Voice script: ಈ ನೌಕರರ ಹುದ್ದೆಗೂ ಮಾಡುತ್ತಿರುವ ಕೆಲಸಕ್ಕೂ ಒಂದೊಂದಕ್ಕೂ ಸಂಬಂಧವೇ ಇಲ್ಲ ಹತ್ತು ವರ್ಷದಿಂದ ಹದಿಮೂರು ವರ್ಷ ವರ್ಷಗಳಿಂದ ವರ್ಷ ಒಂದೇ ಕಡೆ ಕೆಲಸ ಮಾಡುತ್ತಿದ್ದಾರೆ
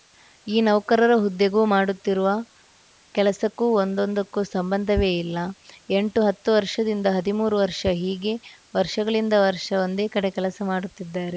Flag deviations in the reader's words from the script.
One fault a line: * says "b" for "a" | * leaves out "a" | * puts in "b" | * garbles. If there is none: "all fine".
* puts in "ಎಂಟು"
* puts in "ಹೀಗೆ"